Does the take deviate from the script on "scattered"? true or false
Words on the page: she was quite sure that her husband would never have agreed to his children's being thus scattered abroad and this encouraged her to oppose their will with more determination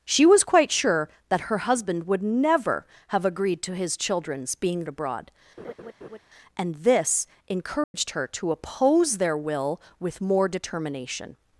true